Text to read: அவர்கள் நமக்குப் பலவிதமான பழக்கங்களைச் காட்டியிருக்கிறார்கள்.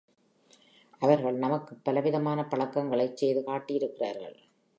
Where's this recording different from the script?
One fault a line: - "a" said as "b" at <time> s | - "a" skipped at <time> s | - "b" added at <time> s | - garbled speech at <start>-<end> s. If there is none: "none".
- "செய்து" added at 3.2 s